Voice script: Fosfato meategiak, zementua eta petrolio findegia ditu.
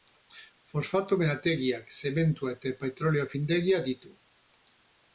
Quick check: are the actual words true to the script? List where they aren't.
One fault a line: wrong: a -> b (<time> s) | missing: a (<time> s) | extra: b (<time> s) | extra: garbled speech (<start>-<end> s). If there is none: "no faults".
no faults